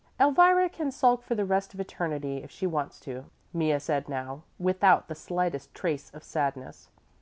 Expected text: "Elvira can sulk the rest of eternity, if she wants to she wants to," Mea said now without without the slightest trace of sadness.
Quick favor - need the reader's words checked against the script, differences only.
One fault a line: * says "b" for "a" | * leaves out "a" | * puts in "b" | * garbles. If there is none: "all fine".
* puts in "for"
* leaves out "she wants to"
* leaves out "without"